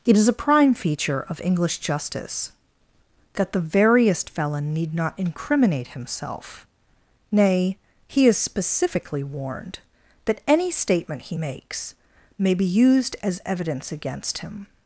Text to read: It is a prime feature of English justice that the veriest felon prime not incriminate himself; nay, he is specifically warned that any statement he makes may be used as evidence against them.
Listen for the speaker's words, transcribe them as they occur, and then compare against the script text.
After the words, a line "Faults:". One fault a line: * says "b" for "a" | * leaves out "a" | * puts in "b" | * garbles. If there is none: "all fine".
It is a prime feature of English justice that the veriest felon need not incriminate himself; nay, he is specifically warned that any statement he makes may be used as evidence against him.
Faults:
* says "need" for "prime"
* says "him" for "them"